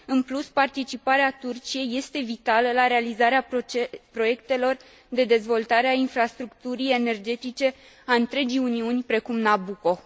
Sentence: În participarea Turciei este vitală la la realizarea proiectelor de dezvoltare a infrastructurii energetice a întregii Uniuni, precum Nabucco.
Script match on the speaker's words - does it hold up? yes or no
no